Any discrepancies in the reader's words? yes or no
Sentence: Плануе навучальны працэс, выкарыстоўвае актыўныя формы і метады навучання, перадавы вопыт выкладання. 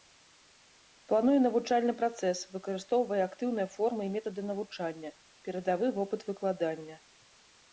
no